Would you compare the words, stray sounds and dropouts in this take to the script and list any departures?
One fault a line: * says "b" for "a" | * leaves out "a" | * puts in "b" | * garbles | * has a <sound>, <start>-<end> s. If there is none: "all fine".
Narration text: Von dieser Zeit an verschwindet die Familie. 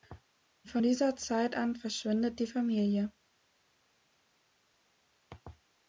all fine